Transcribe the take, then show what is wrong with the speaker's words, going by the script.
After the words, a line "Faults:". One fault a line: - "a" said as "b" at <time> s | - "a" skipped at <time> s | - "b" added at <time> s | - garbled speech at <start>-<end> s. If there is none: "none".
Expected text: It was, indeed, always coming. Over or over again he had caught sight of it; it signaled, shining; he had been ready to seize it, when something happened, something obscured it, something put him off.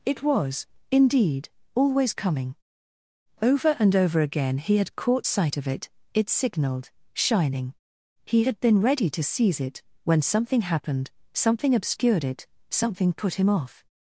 It was, indeed, always coming. Over and over again he had caught sight of it; it signaled, shining; he had been ready to seize it, when something happened, something obscured it, something put him off.
Faults:
- "or" said as "and" at 3.8 s